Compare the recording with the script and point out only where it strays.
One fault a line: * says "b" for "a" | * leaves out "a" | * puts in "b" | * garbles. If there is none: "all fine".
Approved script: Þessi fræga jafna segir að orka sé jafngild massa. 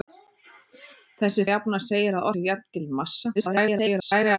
* leaves out "fræga"
* leaves out "orka"
* garbles